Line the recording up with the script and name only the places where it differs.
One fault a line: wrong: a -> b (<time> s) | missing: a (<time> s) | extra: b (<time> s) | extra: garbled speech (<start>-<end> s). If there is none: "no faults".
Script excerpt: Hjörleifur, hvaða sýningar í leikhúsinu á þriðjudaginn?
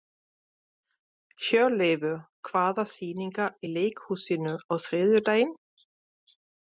no faults